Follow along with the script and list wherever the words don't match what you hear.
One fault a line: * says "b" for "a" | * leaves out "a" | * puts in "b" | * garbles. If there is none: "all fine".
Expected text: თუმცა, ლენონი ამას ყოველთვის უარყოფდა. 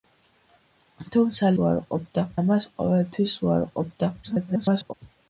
* says "უარყოფდა" for "ლენონი"
* garbles